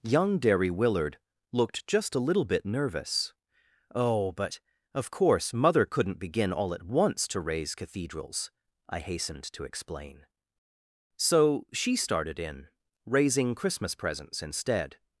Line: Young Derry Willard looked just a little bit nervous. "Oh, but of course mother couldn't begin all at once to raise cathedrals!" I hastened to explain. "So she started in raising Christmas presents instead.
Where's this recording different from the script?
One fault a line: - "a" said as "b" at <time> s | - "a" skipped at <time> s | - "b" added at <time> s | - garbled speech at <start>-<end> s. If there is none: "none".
none